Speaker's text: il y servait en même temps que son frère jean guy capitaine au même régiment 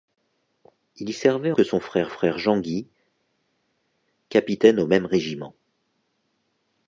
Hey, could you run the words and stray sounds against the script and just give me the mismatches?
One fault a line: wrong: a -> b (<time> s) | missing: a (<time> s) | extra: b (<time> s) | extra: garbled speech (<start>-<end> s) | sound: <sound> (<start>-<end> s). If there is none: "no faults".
missing: en même temps (1.5 s)
extra: frère (2.1 s)